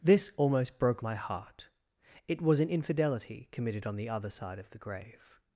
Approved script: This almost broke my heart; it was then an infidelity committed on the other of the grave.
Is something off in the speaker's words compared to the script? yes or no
yes